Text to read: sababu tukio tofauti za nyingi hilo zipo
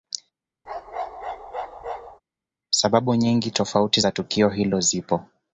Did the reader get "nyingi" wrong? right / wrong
wrong